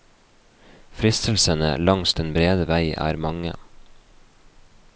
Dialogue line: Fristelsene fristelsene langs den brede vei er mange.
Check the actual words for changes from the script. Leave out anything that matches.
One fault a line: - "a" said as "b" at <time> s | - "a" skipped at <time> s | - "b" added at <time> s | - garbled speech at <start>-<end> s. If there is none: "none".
- "fristelsene" skipped at 1.7 s